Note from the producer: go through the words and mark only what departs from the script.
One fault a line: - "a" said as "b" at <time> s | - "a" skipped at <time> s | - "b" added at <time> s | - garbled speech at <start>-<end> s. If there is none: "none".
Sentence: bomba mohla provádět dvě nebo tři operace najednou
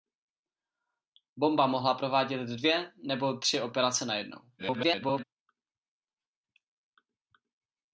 - garbled speech at 4.6-5.2 s